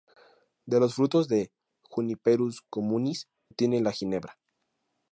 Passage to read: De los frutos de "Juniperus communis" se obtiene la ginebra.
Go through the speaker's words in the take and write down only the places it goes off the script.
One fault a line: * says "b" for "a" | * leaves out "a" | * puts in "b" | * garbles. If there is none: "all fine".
* leaves out "se"